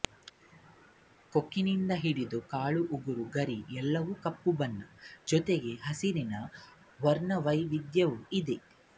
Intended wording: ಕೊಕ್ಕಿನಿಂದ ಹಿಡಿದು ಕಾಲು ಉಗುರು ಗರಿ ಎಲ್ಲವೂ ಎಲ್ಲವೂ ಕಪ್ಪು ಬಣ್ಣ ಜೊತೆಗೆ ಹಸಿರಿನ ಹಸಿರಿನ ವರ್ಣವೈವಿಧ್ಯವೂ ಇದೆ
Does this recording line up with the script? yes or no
no